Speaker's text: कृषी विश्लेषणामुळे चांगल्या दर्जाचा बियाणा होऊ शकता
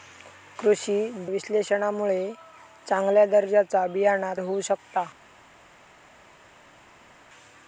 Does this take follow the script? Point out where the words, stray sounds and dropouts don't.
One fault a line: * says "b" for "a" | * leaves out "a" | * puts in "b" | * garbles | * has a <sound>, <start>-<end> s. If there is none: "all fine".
all fine